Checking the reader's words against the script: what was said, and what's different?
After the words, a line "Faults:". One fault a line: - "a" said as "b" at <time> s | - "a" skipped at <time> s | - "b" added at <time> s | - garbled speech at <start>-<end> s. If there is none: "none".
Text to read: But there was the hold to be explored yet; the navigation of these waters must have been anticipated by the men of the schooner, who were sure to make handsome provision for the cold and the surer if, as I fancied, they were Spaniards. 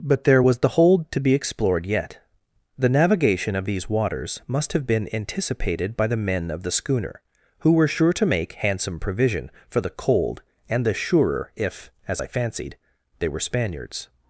But there was the hold to be explored yet; the navigation of these waters must have been anticipated by the men of the schooner, who were sure to make handsome provision for the cold and the surer if, as I fancied, they were Spaniards.
Faults:
none